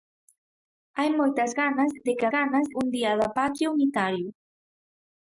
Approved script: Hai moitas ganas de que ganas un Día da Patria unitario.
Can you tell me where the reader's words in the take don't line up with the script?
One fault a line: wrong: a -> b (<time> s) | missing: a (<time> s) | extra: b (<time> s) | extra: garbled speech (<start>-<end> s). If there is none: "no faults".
no faults